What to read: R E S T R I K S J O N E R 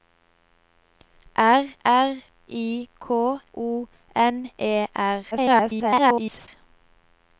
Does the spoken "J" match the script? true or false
false